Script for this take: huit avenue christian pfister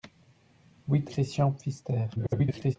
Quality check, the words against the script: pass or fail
fail